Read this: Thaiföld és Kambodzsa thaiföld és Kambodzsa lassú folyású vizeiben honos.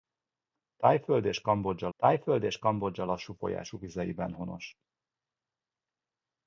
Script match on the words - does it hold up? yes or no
yes